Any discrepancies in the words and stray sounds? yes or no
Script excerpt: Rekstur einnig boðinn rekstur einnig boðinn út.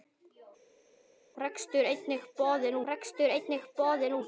no